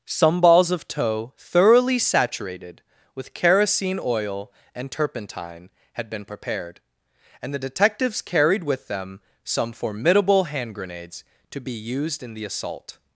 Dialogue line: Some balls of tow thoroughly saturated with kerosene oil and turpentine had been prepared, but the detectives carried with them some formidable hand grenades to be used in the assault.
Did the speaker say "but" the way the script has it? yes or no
no